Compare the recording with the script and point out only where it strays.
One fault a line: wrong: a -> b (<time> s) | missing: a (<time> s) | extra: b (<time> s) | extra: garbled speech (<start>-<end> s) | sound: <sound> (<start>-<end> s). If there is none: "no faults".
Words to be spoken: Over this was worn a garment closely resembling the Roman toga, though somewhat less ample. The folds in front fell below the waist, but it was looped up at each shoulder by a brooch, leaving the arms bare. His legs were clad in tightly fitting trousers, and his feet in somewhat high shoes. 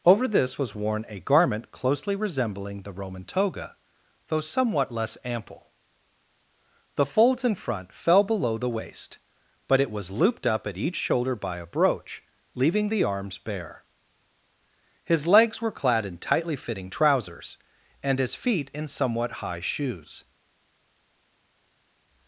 no faults